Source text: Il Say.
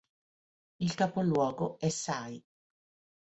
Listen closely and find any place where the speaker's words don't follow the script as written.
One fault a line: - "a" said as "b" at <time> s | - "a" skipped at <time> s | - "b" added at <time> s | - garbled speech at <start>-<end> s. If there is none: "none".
- "capoluogo è" added at 0.9 s